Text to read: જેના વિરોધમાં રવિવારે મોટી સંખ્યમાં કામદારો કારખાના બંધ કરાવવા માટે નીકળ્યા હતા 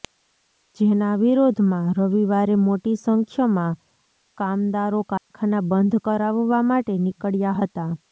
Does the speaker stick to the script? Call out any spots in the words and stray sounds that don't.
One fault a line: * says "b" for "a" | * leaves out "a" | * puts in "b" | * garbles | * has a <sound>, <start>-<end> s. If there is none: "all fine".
* has a dropout, 5.2-5.3 s